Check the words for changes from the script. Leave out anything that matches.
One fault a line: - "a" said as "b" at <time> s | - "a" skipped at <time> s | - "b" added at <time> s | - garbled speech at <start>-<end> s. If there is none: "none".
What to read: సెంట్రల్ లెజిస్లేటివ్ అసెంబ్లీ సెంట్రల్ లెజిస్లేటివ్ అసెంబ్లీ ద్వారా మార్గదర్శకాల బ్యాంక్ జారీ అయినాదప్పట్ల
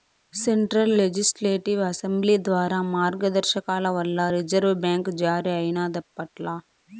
- "సెంట్రల్ లెజిస్లేటివ్ అసెంబ్లీ ద్వారా మార్గదర్శకాల" said as "ద్వారా మార్గదర్శకాల వల్ల రిజర్వు" at 2.5 s